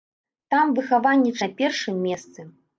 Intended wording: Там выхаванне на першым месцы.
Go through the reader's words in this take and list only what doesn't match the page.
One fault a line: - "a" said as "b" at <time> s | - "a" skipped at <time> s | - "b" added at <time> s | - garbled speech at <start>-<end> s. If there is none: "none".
none